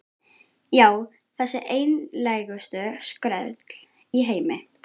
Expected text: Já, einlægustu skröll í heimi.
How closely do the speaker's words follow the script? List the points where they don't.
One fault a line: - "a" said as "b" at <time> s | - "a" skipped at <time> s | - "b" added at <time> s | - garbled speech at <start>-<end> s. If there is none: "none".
- "þessi" added at 1.4 s